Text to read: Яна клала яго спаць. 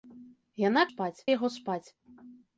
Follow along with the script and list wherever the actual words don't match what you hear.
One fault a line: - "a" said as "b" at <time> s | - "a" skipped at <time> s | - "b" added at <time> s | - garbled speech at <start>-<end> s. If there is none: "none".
- "клала" said as "спаць" at 0.9 s